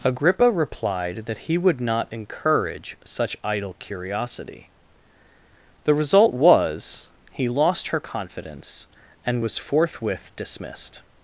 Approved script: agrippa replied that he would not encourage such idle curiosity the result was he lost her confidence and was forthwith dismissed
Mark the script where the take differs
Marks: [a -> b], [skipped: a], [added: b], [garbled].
agrippa replied that he would not encourage such idle curiosity the result was he lost her confidence and was forthwith dismissed